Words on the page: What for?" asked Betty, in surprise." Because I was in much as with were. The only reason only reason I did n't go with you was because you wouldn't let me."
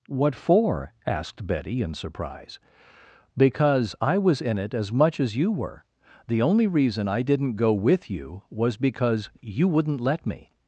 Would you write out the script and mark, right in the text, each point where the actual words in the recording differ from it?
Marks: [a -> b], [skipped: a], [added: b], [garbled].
What for?" asked Betty, in surprise." Because I was in [added: it as] much as [with -> you] were. The only reason [skipped: only reason] I did n't go with you was because you wouldn't let me."